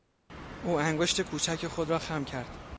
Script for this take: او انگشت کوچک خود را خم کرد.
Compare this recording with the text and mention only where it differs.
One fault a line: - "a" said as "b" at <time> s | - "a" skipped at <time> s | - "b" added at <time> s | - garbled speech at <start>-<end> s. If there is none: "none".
none